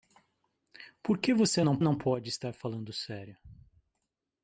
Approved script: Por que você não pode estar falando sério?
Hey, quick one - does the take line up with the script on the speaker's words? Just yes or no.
no